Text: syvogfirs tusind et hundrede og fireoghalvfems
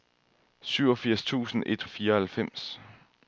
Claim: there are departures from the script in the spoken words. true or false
true